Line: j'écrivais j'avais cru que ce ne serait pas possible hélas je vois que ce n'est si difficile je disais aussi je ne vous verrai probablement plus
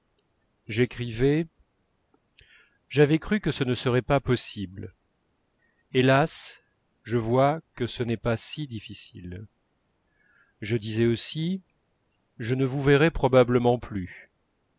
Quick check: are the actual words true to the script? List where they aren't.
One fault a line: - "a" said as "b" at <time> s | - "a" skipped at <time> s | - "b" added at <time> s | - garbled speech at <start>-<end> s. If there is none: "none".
- "pas" added at 8.2 s